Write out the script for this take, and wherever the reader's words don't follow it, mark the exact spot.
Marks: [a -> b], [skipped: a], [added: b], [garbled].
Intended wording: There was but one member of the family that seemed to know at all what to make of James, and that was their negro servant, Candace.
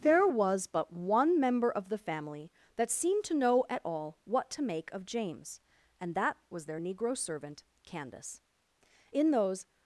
There was but one member of the family that seemed to know at all what to make of James, and that was their negro servant, Candace. [added: In those]